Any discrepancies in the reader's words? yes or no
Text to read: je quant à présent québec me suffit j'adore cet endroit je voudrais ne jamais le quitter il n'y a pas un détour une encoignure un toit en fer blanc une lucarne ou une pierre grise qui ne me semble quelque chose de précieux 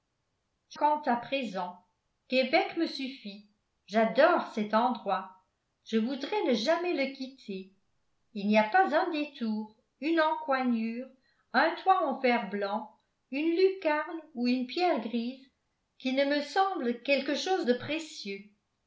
no